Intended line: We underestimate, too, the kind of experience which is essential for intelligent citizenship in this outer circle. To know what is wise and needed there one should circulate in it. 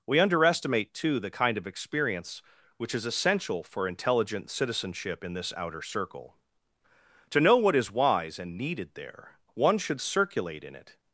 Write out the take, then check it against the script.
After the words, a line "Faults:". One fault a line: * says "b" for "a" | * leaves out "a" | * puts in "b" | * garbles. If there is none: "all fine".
We underestimate, too, the kind of experience which is essential for intelligent citizenship in this outer circle. To know what is wise and needed there one should circulate in it.
Faults:
all fine